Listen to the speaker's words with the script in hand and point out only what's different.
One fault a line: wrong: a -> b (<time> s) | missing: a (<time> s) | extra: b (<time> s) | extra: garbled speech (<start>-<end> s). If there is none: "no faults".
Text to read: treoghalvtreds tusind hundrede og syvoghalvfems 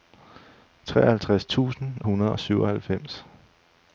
no faults